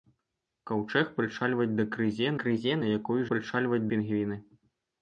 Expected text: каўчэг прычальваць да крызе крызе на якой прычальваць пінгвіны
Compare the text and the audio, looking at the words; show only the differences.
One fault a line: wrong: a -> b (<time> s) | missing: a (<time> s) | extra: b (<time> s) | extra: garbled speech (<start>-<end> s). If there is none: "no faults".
no faults